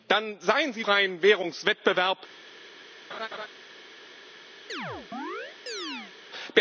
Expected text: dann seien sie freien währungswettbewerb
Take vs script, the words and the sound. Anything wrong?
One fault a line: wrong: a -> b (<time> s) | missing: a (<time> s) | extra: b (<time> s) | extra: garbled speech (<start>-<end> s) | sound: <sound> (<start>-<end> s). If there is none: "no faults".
sound: laugh (3.1-3.5 s)
sound: chirp (4.7-6.1 s)